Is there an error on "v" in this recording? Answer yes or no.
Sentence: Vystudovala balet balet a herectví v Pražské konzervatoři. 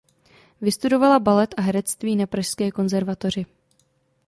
yes